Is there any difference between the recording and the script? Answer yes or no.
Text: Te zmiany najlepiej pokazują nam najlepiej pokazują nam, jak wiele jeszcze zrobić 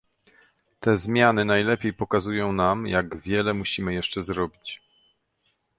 yes